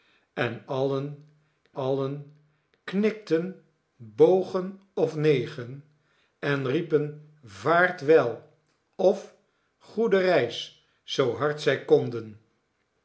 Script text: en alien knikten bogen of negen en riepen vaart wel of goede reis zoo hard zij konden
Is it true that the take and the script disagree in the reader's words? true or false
true